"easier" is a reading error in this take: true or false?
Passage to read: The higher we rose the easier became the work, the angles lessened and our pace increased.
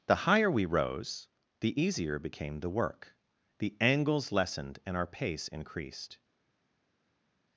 false